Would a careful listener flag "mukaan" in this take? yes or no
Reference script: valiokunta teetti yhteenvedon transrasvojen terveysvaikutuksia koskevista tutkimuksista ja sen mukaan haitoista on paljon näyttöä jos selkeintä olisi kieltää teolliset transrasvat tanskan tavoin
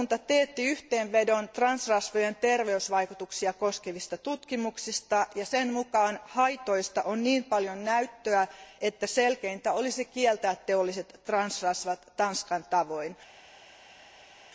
no